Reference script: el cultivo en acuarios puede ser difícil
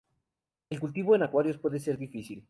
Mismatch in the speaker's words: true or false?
false